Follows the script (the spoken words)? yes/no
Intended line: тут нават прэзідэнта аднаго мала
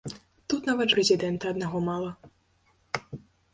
yes